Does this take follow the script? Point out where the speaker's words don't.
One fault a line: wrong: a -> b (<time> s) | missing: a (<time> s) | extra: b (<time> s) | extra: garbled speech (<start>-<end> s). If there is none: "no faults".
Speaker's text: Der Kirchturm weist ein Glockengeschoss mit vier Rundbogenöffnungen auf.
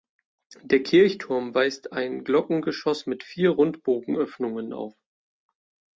no faults